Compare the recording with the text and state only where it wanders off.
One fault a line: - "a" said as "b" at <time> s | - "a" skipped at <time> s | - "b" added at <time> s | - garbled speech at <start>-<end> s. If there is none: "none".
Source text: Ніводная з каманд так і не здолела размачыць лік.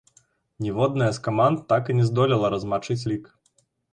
none